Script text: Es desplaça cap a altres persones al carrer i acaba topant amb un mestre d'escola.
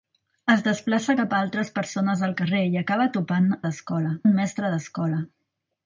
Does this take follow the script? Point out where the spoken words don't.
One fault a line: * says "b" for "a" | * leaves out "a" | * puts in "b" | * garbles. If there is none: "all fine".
* says "d'escola" for "amb"